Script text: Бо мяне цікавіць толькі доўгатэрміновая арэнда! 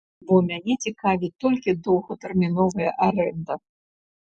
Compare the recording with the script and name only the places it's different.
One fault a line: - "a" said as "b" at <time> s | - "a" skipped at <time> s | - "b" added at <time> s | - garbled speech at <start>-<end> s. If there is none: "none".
none